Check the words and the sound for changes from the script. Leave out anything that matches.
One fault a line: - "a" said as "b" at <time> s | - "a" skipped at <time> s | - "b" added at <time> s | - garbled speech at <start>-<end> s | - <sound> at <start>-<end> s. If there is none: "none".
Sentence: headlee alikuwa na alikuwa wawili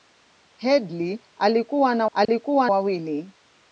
- dropout at 2.2-2.3 s